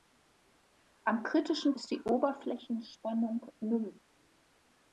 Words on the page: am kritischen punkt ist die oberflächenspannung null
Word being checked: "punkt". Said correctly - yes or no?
no